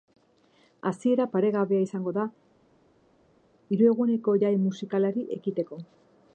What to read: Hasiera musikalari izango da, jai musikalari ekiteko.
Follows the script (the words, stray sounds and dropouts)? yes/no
no